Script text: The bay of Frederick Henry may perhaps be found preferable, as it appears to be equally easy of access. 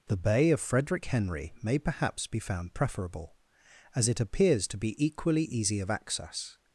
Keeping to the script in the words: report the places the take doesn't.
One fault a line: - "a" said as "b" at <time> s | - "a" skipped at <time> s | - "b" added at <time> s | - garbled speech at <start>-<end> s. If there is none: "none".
none